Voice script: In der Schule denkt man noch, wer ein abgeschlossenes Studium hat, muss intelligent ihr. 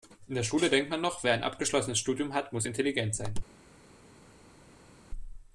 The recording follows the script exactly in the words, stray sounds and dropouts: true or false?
false